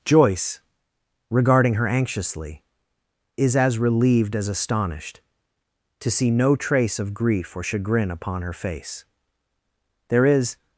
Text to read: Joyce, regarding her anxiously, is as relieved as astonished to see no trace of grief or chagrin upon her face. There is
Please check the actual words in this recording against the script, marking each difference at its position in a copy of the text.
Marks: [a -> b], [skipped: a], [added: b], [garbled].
Joyce, regarding her anxiously, is as relieved as astonished to see no trace of grief or chagrin upon her face. There is